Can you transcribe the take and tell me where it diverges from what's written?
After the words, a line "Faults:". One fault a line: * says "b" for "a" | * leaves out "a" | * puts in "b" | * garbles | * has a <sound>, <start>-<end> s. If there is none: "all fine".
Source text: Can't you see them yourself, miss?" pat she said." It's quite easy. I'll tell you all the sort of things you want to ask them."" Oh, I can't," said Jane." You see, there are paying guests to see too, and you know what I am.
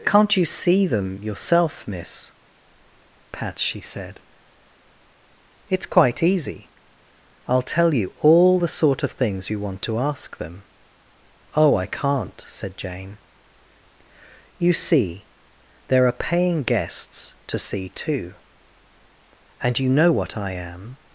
Can't you see them yourself, miss?" pat she said." It's quite easy. I'll tell you all the sort of things you want to ask them."" Oh, I can't," said Jane." You see, there are paying guests to see too, and you know what I am.
Faults:
all fine